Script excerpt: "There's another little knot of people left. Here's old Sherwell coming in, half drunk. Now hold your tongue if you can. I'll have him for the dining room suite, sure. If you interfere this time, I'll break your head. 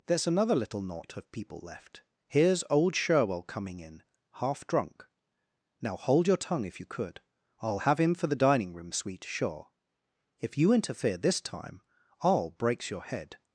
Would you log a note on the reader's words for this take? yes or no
yes